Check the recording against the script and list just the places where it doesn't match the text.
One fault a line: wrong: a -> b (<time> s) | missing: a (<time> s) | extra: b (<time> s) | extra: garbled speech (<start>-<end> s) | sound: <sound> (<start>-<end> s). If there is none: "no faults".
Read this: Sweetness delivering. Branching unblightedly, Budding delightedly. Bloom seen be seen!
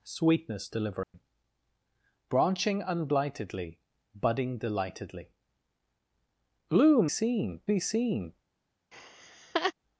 sound: dropout (1.0-1.1 s)
sound: laugh (8.9-9.7 s)